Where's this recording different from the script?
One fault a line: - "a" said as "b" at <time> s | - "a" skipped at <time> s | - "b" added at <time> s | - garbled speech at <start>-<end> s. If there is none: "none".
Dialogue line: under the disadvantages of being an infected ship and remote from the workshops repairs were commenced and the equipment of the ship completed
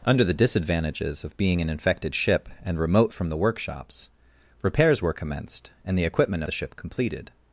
- "of" skipped at 6.4 s